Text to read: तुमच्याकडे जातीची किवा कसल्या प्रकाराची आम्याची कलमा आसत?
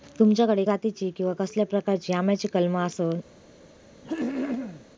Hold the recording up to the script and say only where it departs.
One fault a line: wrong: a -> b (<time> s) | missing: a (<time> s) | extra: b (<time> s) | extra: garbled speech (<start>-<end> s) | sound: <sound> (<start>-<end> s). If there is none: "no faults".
sound: throat clearing (4.0-4.9 s)